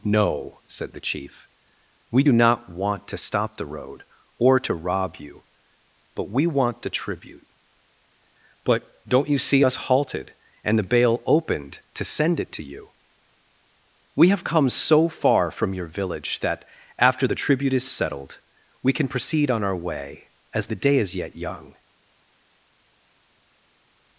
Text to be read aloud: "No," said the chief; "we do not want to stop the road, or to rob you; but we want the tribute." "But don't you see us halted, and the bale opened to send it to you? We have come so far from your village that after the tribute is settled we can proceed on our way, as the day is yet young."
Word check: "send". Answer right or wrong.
right